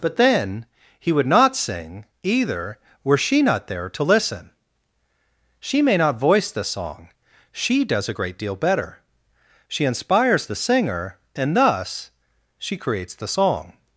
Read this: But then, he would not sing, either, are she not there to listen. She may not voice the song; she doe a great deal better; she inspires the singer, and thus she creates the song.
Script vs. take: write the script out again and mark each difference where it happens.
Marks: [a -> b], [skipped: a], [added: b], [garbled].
But then, he would not sing, either, [are -> were] she not there to listen. She may not voice the song; she [doe -> does] a great deal better; she inspires the singer, and thus she creates the song.